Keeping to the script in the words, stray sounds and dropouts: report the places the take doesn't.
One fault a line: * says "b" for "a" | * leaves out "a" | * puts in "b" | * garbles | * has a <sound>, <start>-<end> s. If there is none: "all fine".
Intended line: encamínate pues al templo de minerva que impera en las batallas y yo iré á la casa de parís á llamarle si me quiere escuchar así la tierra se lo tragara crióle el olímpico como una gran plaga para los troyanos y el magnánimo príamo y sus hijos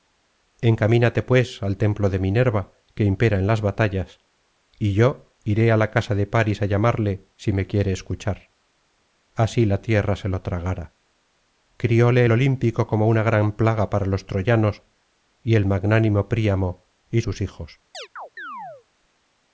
* has a chirp, 17.9-18.9 s